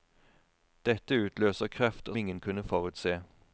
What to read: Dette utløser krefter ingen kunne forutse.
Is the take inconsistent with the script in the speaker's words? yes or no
no